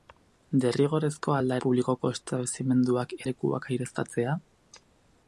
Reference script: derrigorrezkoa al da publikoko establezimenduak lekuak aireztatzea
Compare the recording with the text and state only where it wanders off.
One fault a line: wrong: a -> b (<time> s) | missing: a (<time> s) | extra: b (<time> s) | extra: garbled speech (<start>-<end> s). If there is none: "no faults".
no faults